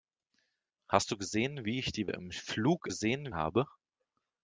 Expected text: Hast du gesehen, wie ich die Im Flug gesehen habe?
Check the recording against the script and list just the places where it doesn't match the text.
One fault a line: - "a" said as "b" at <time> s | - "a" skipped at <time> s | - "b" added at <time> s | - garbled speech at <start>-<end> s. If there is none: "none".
none